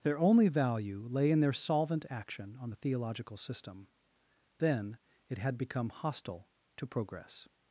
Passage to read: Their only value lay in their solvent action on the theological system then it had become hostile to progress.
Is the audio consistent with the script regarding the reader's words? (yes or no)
yes